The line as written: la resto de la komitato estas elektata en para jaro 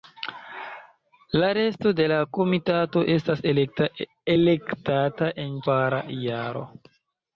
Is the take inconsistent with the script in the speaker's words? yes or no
no